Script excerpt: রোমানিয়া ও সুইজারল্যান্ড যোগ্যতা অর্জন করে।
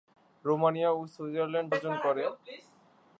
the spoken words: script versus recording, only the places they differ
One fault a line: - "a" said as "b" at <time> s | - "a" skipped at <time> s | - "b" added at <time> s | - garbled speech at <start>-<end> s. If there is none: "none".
- "যোগ্যতা" skipped at 1.7 s